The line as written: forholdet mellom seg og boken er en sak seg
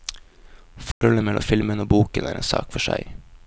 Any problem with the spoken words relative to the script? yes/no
yes